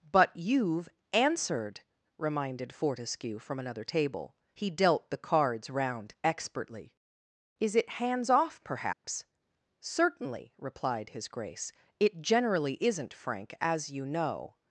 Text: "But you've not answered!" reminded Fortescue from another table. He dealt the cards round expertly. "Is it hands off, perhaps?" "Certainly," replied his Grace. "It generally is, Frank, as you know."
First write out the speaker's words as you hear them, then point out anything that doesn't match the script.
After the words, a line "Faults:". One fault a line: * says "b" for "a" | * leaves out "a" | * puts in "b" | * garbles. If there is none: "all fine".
"But you've answered!" reminded Fortescue from another table. He dealt the cards round expertly. "Is it hands off, perhaps?" "Certainly," replied his Grace. "It generally isn't, Frank, as you know."
Faults:
* leaves out "not"
* says "isn't" for "is"